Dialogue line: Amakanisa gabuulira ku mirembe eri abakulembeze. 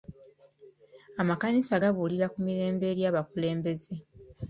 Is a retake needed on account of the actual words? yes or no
no